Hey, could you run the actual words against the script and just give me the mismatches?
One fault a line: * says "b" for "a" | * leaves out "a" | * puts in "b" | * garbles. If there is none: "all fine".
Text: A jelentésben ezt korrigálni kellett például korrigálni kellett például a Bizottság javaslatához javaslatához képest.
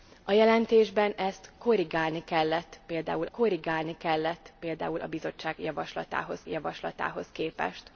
all fine